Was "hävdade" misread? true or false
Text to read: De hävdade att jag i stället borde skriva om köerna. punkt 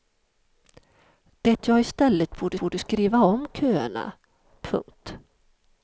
true